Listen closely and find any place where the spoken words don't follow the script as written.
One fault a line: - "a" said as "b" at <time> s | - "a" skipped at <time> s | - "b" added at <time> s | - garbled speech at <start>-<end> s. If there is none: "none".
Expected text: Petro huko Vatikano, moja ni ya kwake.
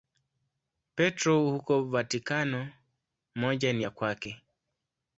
none